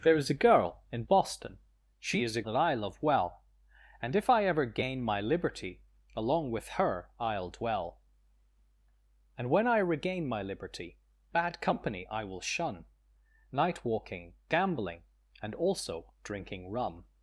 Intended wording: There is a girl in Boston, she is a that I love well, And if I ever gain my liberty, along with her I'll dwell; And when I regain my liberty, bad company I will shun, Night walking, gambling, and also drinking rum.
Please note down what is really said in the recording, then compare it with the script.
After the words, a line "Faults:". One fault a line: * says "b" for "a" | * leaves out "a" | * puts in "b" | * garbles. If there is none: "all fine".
There is a girl in Boston, she is a that I love well, And if I ever gain my liberty, along with her I'll dwell; And when I regain my liberty, bad company I will shun, Night walking, gambling, and also drinking rum.
Faults:
all fine